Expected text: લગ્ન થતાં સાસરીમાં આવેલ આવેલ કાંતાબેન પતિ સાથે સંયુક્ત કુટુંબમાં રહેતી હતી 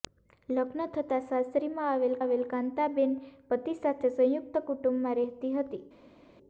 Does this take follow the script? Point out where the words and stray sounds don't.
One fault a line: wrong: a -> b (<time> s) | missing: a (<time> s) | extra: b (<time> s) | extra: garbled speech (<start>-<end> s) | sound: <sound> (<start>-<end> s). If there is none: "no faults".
no faults